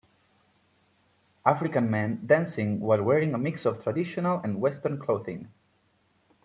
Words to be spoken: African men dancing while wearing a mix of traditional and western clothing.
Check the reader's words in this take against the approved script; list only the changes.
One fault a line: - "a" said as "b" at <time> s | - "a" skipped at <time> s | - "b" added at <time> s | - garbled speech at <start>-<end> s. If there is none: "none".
none